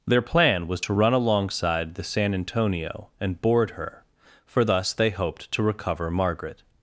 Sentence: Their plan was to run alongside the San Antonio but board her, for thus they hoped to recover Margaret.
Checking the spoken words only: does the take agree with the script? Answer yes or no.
no